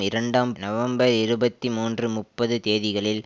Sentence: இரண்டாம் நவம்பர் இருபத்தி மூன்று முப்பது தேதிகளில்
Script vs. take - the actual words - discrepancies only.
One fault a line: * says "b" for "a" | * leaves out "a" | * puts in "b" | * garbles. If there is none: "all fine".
all fine